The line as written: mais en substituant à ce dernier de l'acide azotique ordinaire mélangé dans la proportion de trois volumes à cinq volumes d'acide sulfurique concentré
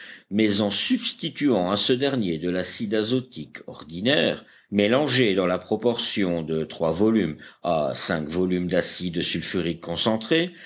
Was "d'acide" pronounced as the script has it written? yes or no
yes